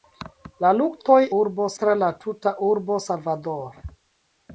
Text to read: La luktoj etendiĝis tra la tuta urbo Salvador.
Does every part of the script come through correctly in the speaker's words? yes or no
no